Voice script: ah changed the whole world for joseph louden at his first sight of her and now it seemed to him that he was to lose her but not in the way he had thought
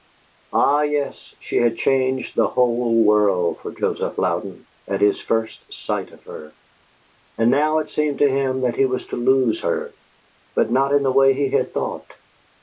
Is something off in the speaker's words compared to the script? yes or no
yes